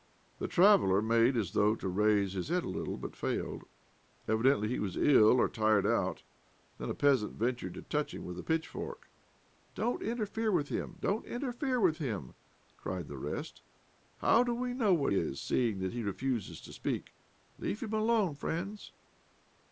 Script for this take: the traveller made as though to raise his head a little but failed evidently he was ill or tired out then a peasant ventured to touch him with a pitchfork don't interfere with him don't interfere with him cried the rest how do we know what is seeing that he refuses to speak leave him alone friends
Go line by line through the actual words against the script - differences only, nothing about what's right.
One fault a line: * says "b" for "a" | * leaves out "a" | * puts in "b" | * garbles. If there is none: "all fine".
all fine